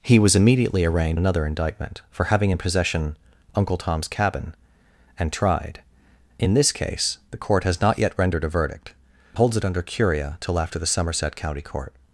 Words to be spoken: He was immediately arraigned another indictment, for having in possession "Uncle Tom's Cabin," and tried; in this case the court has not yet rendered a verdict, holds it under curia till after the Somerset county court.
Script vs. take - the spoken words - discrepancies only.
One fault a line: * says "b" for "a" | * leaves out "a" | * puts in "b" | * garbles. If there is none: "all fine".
all fine